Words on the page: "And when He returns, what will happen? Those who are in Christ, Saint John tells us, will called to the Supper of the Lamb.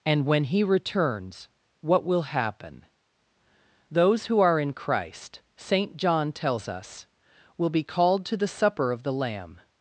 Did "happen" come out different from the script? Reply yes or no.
no